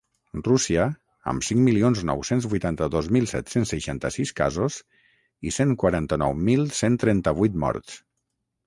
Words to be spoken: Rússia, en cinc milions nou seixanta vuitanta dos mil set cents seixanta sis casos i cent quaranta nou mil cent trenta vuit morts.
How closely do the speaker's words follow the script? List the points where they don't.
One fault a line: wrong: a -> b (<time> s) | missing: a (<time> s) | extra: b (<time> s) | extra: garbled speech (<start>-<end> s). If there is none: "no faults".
wrong: en -> amb (1.3 s)
wrong: seixanta -> cents (2.3 s)